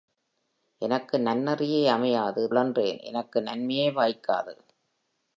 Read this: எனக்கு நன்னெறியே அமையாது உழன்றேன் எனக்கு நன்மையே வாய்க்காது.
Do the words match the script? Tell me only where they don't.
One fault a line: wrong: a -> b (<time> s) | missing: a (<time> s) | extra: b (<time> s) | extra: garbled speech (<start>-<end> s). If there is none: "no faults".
no faults